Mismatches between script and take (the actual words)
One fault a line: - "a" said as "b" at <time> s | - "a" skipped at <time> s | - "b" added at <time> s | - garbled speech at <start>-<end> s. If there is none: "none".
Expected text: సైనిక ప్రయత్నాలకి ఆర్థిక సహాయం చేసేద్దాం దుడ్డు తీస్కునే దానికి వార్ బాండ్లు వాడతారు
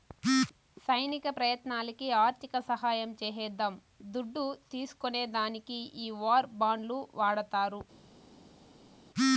- "ఈ" added at 6.0 s